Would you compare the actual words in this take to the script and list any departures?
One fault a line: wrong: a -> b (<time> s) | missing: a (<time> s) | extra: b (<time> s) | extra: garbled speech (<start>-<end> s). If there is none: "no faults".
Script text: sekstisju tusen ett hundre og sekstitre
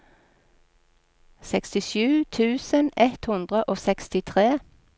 no faults